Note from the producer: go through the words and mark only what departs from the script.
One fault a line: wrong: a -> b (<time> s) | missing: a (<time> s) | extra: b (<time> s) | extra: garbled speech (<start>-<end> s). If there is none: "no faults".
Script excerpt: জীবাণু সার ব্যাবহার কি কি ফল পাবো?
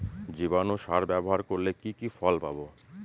extra: করলে (1.5 s)